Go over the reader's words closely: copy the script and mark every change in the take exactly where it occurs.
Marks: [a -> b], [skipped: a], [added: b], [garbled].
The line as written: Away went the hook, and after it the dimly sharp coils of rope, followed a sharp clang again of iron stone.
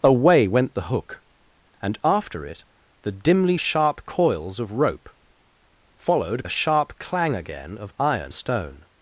Away went the hook, and after it the dimly sharp coils of rope, followed a sharp clang again of iron stone.